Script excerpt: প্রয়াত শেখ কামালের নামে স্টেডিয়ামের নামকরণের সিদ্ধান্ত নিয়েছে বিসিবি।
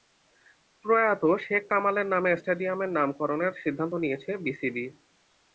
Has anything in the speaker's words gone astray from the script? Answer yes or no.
no